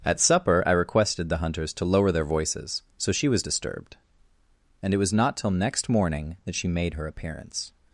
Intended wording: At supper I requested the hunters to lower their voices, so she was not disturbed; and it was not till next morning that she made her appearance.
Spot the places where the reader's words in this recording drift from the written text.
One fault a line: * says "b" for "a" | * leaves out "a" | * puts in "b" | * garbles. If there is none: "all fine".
* leaves out "not"